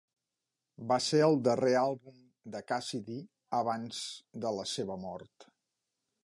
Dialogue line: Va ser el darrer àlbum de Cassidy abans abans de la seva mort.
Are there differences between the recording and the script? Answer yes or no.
yes